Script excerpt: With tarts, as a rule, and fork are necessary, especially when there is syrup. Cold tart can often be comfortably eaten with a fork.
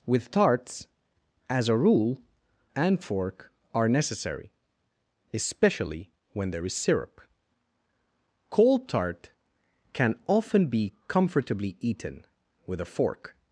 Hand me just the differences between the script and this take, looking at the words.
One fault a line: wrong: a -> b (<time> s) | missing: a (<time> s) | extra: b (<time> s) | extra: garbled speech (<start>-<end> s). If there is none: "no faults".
no faults